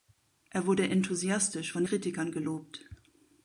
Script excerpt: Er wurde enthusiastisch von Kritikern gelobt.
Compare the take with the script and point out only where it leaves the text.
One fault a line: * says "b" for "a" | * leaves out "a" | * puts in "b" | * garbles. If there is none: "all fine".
all fine